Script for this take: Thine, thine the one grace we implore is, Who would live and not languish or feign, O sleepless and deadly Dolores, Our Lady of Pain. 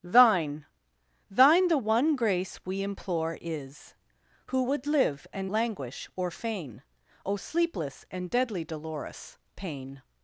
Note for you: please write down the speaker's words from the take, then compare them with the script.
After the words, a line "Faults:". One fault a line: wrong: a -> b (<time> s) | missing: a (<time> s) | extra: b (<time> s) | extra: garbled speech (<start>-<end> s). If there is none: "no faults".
Thine, thine the one grace we implore is, Who would live and languish or feign, O sleepless and deadly Dolores, Pain.
Faults:
missing: not (5.5 s)
missing: Our Lady of (9.4 s)